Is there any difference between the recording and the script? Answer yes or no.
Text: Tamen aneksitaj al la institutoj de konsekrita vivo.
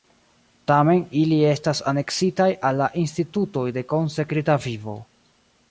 yes